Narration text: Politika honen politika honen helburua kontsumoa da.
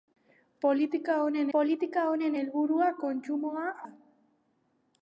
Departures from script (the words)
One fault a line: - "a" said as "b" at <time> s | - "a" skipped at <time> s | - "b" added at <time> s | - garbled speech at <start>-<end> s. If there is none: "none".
none